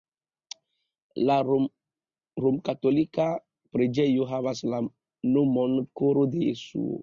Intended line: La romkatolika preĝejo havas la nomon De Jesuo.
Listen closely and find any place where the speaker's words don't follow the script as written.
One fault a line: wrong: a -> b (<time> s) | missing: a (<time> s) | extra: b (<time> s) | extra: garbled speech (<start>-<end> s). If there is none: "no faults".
extra: Koro (6.0 s)